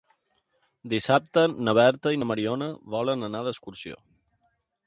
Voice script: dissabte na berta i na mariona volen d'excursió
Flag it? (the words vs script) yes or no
yes